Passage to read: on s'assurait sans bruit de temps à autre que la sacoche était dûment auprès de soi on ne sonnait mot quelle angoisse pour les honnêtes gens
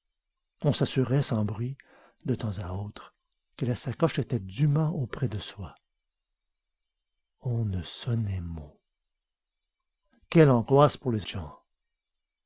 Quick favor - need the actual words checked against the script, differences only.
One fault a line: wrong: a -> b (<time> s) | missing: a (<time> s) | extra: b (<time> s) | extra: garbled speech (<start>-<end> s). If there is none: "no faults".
missing: honnêtes (11.3 s)